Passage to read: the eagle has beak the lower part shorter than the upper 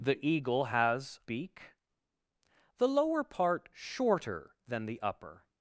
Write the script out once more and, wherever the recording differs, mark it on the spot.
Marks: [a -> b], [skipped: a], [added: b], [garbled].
the eagle has beak the lower part shorter than the upper